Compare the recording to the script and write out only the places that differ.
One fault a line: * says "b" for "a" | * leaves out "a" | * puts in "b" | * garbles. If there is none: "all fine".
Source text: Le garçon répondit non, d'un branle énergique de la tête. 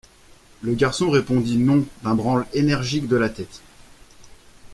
all fine